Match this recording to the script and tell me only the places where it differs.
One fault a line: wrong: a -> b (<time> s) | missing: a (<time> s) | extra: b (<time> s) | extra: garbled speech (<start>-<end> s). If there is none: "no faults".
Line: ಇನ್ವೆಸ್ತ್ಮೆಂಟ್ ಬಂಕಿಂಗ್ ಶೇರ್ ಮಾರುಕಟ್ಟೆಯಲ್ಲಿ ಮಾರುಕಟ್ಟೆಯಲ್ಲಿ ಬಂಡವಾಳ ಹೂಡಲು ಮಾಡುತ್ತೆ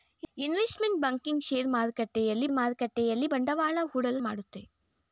no faults